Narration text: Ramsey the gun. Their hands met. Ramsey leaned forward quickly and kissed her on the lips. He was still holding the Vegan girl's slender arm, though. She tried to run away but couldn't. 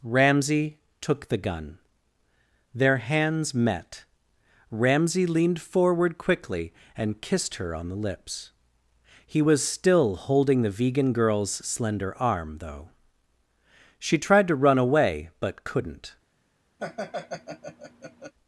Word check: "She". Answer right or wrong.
right